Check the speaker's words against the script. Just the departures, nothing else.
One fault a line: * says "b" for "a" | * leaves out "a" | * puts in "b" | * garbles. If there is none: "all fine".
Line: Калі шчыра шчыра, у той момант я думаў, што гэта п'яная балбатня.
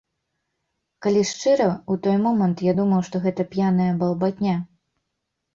* leaves out "шчыра"